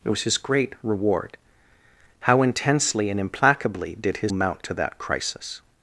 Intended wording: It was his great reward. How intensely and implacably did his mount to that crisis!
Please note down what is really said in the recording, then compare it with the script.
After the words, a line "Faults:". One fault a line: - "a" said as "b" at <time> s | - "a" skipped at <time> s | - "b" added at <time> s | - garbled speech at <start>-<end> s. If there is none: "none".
It was his great reward. How intensely and implacably did his mount to that crisis!
Faults:
none